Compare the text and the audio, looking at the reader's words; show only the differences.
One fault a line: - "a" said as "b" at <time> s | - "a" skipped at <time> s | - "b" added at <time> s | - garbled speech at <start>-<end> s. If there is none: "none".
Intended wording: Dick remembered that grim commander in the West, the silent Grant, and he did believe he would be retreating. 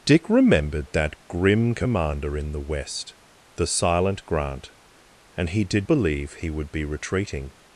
none